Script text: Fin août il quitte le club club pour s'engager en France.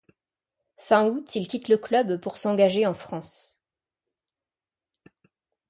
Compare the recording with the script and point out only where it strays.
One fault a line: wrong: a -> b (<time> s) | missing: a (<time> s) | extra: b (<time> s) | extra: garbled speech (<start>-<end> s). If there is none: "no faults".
missing: club (2.2 s)